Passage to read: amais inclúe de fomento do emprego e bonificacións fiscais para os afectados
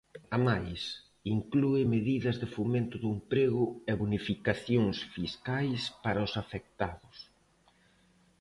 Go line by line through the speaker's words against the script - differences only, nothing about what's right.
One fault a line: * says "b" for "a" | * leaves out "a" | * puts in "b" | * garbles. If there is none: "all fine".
* puts in "medidas"